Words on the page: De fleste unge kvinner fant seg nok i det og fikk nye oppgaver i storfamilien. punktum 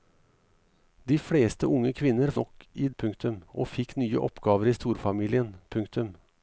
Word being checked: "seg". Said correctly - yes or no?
no